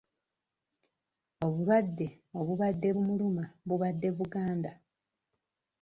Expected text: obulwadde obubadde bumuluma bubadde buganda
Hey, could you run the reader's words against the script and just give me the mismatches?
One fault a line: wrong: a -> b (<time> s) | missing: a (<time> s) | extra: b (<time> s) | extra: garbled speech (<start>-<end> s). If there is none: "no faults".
no faults